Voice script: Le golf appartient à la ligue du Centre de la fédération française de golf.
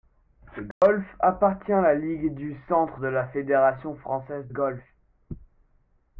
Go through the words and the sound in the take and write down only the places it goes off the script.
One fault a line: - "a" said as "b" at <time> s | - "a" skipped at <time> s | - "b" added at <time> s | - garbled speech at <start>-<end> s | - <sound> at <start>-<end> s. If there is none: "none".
- dropout at 0.7-0.8 s
- "de" skipped at 4.5 s